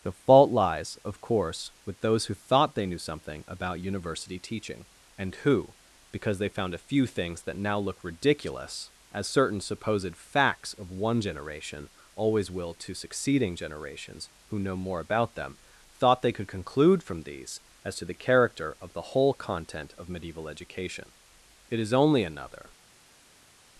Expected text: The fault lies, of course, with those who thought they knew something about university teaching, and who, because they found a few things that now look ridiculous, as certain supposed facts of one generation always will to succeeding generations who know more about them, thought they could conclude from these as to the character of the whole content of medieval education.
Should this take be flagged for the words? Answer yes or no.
yes